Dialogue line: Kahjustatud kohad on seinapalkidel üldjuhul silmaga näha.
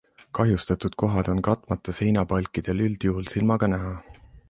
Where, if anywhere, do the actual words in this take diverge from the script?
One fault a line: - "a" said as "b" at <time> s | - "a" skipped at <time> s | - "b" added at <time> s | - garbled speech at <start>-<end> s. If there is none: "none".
- "katmata" added at 1.5 s